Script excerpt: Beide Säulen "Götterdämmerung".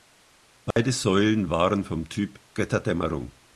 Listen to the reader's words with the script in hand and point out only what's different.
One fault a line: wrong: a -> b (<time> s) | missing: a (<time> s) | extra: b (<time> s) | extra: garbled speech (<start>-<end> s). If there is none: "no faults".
extra: waren vom Typ (1.5 s)